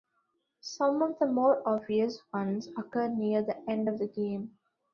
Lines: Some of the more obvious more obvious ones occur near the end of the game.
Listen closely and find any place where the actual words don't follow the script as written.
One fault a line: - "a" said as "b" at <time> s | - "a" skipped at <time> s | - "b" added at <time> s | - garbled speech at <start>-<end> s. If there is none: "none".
- "more obvious" skipped at 2.2 s